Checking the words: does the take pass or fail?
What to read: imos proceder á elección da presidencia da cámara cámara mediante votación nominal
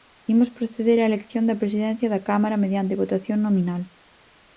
fail